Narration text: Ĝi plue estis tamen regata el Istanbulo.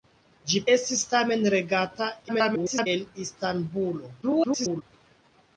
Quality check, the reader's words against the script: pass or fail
fail